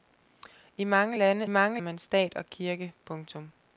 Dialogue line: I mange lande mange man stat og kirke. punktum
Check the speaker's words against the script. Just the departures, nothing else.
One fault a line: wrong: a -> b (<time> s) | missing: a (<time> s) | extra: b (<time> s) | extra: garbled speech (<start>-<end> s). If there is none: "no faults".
no faults